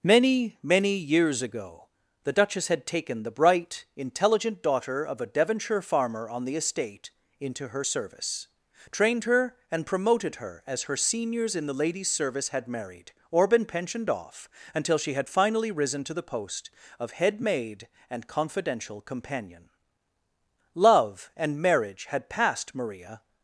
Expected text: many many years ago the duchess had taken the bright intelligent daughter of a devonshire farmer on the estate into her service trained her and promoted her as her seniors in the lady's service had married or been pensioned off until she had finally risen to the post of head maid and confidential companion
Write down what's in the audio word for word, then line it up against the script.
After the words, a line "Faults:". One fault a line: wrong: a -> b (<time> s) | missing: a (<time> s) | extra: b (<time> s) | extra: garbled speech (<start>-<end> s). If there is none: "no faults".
many many years ago the duchess had taken the bright intelligent daughter of a devonshire farmer on the estate into her service trained her and promoted her as her seniors in the lady's service had married or been pensioned off until she had finally risen to the post of head maid and confidential companion love and marriage had passed maria
Faults:
extra: love and marriage had passed maria (20.7 s)